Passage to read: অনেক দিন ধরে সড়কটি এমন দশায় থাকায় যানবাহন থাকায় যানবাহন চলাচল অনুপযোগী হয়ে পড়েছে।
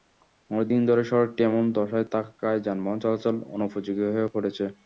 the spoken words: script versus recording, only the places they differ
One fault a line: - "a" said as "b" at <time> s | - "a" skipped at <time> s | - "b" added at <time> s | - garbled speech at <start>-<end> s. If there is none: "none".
- "থাকায় যানবাহন" skipped at 3.0 s